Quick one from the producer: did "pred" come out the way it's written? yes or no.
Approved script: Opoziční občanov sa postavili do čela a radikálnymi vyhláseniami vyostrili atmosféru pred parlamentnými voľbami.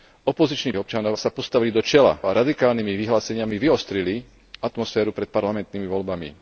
yes